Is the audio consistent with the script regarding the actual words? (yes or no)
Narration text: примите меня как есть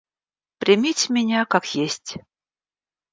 yes